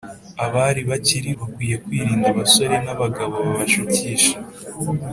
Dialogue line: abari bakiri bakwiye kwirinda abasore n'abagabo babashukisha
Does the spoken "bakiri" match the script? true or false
true